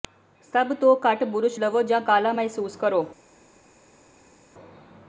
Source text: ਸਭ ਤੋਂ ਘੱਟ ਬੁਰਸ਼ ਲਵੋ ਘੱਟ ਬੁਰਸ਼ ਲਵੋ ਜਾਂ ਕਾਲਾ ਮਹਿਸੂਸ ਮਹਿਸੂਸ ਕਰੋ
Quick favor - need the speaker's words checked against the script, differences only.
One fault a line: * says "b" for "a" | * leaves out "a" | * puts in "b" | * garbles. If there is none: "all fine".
* leaves out "ਘੱਟ ਬੁਰਸ਼ ਲਵੋ"
* leaves out "ਮਹਿਸੂਸ"